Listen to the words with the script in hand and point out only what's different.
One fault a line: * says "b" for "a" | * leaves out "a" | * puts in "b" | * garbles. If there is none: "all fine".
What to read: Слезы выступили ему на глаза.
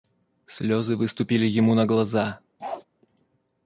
all fine